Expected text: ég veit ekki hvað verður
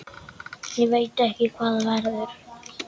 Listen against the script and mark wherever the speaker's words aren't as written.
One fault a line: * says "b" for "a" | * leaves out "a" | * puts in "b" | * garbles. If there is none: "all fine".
all fine